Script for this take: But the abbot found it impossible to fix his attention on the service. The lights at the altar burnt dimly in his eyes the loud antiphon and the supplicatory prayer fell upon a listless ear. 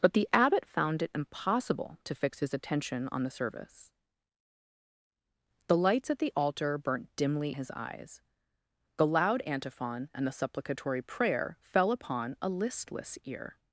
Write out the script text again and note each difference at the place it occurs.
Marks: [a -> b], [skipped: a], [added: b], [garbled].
But the abbot found it impossible to fix his attention on the service. The lights at the altar burnt dimly [skipped: in] his eyes the loud antiphon and the supplicatory prayer fell upon a listless ear.